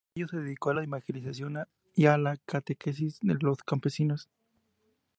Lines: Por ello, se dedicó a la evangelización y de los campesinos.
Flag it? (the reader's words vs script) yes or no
yes